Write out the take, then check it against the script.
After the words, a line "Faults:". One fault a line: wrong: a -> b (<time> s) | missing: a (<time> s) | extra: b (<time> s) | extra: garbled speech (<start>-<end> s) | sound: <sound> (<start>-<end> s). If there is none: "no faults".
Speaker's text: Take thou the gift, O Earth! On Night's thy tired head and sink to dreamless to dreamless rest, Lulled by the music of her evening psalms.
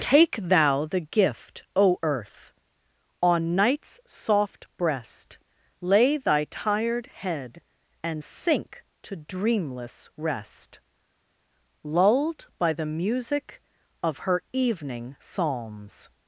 Take thou the gift, O Earth! On Night's soft breast Lay thy tired head and sink to dreamless rest, Lulled by the music of her evening psalms.
Faults:
extra: soft breast Lay (4.0 s)
missing: to dreamless (10.1 s)